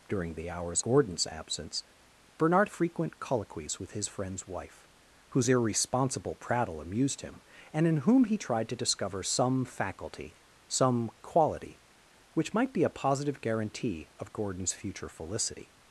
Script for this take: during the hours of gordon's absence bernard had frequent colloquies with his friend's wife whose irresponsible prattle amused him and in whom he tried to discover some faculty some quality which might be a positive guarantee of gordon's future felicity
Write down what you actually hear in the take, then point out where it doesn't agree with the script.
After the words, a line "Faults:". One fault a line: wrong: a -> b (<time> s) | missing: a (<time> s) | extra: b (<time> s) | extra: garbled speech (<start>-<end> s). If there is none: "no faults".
during the hours gordon's absence bernard frequent colloquies with his friend's wife whose irresponsible prattle amused him and in whom he tried to discover some faculty some quality which might be a positive guarantee of gordon's future felicity
Faults:
missing: of (0.8 s)
missing: had (2.7 s)